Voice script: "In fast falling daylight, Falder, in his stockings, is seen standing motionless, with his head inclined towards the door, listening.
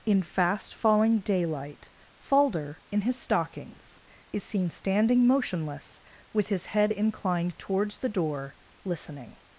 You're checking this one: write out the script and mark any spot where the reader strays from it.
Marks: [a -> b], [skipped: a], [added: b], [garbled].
"In fast falling daylight, Falder, in his stockings, is seen standing motionless, with his head inclined towards the door, listening.